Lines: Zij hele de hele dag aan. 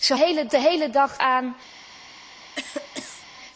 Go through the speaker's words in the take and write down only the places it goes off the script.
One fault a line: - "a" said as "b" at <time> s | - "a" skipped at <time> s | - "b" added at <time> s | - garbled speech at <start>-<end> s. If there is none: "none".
none